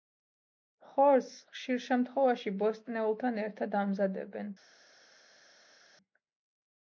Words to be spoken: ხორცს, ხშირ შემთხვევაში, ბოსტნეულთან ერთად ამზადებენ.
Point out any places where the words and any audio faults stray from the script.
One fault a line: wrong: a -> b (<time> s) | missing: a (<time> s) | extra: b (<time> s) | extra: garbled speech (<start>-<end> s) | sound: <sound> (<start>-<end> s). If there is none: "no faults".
no faults